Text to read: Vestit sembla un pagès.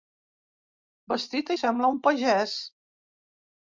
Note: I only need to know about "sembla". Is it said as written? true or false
true